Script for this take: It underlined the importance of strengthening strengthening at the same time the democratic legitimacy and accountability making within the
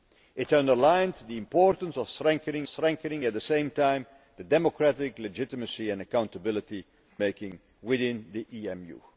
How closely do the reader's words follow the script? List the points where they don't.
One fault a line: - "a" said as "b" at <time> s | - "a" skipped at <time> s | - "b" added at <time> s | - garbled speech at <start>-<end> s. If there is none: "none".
none